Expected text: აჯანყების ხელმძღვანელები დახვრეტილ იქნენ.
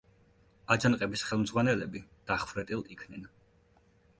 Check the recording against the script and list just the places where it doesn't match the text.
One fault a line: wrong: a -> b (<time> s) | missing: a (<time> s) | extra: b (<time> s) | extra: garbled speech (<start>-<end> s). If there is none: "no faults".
no faults